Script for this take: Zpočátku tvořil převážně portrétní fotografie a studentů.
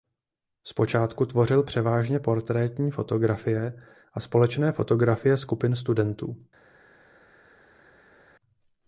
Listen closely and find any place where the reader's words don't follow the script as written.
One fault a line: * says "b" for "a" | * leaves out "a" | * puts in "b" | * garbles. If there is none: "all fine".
* puts in "společné fotografie skupin"